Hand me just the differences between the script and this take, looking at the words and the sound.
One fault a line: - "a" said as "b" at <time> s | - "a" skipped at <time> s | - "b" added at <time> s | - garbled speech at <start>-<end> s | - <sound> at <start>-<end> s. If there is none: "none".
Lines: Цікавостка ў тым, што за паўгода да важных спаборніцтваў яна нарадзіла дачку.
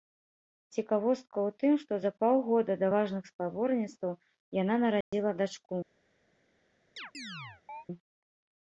- dropout at 5.0-5.1 s
- chirp at 7.0-7.9 s